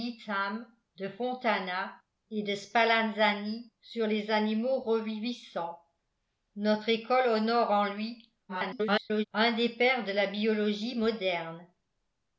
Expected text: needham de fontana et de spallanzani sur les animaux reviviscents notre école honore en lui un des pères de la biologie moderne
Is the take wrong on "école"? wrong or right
right